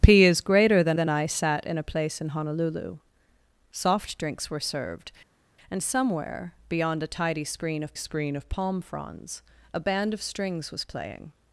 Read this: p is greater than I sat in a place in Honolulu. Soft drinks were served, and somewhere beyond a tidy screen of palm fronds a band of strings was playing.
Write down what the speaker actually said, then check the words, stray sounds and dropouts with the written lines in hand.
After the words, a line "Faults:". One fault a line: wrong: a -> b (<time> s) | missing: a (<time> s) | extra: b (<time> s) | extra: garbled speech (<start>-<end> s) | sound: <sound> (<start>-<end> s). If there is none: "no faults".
p is greater than than I sat in a place in Honolulu. Soft drinks were served, and somewhere beyond a tidy screen of screen of palm fronds a band of strings was playing.
Faults:
extra: than (0.9 s)
extra: screen of (7.9 s)